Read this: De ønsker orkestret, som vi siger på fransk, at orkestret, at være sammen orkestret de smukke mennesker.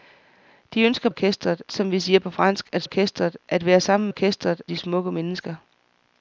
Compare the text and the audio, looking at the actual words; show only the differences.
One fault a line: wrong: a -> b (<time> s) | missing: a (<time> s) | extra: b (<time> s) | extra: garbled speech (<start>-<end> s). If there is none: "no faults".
no faults